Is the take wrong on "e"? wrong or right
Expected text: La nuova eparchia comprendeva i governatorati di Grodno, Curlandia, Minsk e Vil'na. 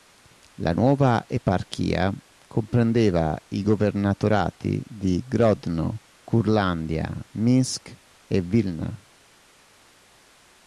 right